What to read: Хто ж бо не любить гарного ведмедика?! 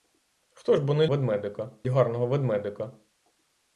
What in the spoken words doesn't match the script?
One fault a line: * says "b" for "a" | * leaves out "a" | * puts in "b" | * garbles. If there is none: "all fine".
* says "ведмедика" for "любить"